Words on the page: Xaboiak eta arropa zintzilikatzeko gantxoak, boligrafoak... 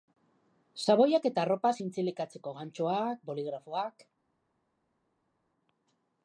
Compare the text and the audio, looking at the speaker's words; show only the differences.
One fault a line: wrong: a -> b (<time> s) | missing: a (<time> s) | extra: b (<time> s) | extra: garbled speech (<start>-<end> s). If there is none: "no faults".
no faults